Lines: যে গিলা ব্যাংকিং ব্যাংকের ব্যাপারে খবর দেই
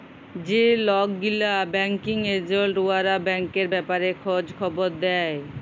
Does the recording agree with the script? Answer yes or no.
no